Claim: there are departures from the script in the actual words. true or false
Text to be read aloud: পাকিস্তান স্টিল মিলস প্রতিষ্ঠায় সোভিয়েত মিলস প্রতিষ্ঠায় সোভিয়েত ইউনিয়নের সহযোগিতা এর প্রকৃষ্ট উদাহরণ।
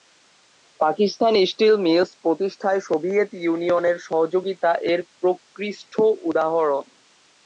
true